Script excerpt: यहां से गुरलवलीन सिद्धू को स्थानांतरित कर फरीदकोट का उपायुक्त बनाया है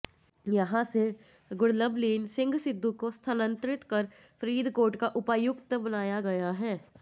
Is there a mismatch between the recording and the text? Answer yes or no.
yes